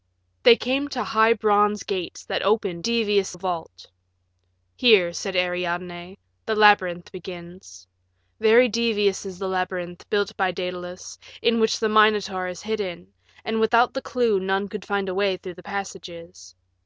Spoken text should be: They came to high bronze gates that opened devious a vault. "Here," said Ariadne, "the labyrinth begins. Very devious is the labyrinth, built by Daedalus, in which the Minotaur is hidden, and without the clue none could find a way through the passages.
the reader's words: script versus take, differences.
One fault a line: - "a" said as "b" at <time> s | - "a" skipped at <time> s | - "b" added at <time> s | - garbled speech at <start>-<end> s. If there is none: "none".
none